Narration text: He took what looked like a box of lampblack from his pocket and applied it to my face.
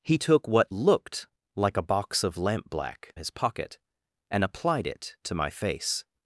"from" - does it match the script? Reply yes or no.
no